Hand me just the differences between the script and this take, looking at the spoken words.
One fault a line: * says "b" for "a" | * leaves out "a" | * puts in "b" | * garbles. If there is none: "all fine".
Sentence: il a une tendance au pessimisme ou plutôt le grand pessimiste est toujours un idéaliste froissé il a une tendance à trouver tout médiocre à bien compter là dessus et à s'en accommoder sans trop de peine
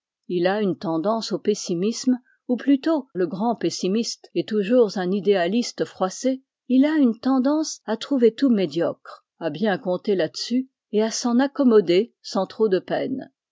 all fine